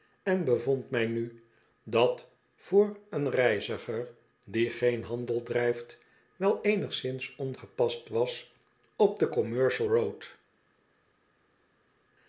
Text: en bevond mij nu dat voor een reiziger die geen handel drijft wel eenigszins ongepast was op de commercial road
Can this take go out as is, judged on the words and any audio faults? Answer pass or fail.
pass